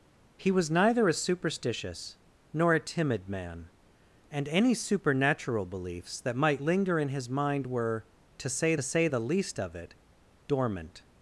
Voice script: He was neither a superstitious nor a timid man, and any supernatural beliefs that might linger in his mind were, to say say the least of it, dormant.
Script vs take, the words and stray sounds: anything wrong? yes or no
no